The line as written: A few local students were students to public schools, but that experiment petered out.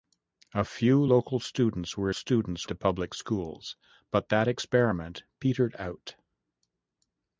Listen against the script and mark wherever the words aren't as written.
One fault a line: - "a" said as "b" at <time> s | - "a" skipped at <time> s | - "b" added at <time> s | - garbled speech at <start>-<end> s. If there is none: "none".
none